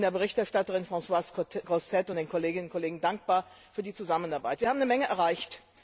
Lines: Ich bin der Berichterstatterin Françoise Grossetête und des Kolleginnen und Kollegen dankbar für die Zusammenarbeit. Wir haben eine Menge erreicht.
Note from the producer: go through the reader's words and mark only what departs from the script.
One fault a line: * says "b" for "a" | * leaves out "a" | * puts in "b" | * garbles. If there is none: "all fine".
* says "den" for "des"